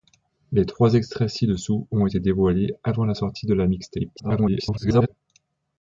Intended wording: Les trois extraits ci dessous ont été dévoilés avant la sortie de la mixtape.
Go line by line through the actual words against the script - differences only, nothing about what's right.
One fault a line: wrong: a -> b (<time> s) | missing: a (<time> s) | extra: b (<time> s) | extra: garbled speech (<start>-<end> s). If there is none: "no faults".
extra: garbled speech (4.2-5.1 s)